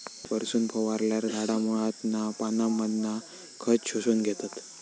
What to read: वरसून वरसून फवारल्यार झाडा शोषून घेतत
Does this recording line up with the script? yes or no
no